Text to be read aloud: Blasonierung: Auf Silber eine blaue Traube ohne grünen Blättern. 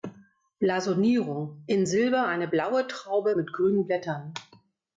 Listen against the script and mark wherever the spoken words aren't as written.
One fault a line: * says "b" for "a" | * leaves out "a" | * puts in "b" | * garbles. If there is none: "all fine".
* says "In" for "Auf"
* says "mit" for "ohne"